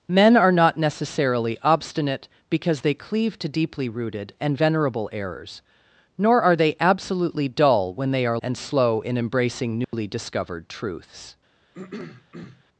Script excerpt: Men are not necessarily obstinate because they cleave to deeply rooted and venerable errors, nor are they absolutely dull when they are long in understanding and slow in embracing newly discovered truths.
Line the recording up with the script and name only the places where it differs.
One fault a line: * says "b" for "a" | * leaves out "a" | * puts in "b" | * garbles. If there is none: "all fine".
* leaves out "long in understanding"